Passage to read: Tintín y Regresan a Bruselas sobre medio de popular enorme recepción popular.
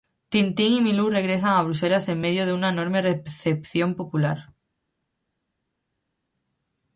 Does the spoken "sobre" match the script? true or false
false